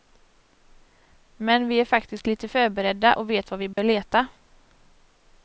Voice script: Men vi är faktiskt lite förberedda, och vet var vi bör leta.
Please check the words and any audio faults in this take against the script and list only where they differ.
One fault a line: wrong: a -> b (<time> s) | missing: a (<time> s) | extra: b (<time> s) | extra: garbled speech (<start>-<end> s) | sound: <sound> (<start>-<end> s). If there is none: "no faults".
sound: dropout (3.7-3.8 s)